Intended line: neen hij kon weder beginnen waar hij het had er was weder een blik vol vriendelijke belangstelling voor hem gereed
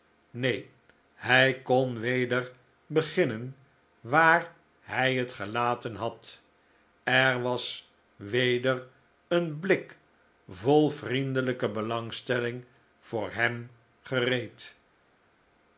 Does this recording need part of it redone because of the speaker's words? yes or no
yes